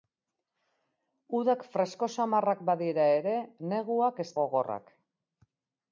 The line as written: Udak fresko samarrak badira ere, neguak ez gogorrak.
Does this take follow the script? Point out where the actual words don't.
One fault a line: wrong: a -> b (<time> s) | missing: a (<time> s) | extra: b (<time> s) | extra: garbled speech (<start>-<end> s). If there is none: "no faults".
no faults